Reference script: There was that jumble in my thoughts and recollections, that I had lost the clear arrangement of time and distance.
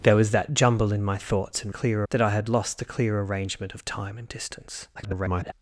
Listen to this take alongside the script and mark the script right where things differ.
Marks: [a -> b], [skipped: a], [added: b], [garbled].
There was that jumble in my thoughts and [recollections, -> clear] that I had lost the clear arrangement of time and distance. [garbled]